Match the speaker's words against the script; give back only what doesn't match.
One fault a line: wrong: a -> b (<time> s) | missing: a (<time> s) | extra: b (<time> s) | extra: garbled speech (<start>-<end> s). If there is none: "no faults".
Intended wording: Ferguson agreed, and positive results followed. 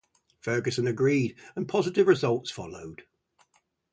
no faults